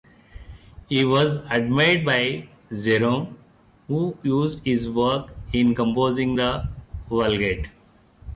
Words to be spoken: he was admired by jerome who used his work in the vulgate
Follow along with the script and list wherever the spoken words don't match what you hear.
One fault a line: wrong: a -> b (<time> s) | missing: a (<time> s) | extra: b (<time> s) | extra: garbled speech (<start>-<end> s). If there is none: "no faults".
extra: composing (5.8 s)